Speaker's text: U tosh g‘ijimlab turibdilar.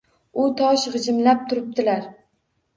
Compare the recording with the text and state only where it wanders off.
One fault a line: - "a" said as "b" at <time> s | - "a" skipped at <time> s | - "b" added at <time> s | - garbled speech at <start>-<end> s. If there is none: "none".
none